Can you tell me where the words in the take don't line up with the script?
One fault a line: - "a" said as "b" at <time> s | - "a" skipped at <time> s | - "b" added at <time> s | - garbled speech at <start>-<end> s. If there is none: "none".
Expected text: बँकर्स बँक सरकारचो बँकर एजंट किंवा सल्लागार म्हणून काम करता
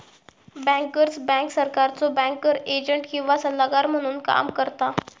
none